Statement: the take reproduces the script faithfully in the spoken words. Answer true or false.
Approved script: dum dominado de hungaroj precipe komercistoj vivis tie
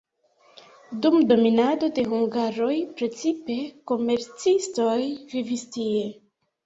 true